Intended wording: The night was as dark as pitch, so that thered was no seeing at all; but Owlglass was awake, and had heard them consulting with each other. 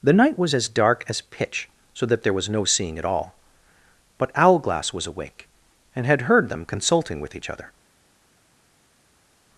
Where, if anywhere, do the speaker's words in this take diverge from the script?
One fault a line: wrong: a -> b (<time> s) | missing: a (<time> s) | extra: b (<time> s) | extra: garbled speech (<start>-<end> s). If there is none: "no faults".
wrong: thered -> there (2.2 s)